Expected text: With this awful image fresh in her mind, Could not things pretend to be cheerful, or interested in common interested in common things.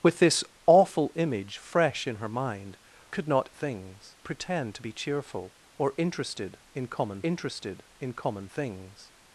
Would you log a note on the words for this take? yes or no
no